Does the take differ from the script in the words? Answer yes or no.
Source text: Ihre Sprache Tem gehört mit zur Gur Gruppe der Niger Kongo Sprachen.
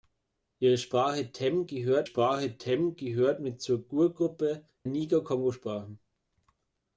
yes